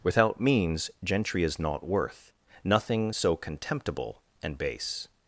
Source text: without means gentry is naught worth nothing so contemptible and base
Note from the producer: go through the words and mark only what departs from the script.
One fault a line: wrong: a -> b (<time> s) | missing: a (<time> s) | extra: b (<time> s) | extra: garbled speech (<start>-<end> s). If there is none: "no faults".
no faults